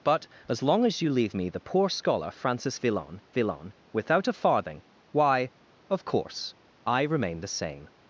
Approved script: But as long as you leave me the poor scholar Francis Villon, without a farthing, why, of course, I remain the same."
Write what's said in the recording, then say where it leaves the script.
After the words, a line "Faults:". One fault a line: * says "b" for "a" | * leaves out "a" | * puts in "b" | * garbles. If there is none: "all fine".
But as long as you leave me the poor scholar Francis Villon Villon, without a farthing, why, of course, I remain the same."
Faults:
* puts in "Villon"